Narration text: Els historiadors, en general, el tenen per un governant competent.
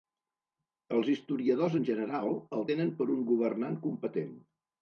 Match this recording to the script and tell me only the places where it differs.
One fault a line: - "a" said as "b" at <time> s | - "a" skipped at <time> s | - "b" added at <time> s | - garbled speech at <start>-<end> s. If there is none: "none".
none